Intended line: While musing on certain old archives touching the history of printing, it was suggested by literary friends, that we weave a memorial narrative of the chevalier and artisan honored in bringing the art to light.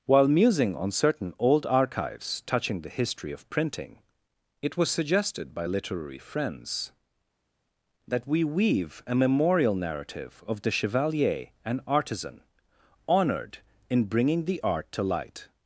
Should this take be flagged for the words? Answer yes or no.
no